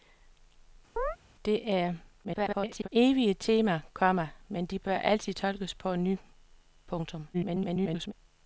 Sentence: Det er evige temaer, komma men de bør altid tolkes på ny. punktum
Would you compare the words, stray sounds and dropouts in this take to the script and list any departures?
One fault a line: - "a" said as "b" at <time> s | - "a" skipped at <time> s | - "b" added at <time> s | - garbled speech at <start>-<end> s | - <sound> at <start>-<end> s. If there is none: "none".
- chirp at 1.0-1.2 s
- garbled speech at 2.2-2.9 s
- garbled speech at 7.3-8.1 s